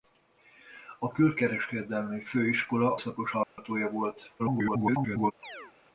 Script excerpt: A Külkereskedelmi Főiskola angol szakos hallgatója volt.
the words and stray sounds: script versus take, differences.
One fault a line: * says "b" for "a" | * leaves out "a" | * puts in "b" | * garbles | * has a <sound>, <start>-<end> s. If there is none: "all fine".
* leaves out "angol"
* has a dropout, 3.4-3.6 s
* garbles
* has a chirp, 5.4-5.7 s